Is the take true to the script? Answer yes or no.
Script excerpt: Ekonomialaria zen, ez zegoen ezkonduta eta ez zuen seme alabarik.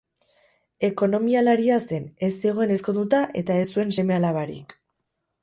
yes